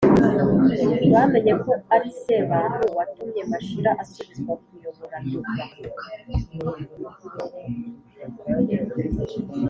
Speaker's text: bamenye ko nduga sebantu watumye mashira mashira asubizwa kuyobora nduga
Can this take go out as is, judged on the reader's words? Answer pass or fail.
fail